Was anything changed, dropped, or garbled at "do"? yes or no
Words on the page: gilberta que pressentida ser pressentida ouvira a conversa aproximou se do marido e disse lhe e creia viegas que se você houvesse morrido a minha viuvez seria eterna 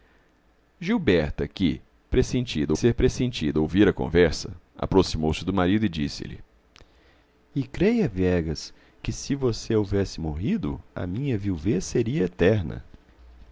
no